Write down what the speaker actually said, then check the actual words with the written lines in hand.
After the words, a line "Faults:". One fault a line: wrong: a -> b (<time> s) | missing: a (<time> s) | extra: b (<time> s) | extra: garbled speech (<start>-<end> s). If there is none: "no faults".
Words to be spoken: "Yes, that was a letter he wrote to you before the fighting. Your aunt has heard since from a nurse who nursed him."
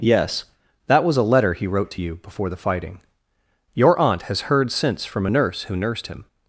"Yes, that was a letter he wrote to you before the fighting. Your aunt has heard since from a nurse who nursed him."
Faults:
no faults